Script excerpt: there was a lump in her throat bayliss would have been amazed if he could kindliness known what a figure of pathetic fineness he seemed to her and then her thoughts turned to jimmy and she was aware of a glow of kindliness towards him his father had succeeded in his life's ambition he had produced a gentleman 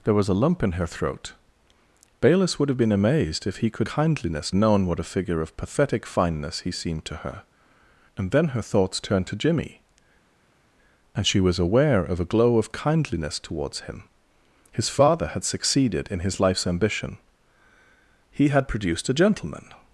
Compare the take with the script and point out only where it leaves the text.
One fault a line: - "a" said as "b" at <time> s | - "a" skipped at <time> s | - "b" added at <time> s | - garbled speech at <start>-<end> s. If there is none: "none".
none